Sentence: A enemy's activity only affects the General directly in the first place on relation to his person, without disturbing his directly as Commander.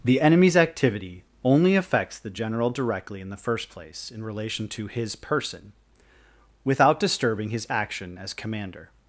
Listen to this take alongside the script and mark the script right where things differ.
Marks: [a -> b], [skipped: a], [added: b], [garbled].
[A -> The] enemy's activity only affects the General directly in the first place [on -> in] relation to his person, without disturbing his [directly -> action] as Commander.